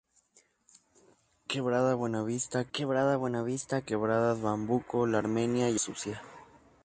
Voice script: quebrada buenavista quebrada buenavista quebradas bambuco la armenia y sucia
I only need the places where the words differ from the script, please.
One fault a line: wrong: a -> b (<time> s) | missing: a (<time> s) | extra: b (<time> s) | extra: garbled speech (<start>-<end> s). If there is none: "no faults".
no faults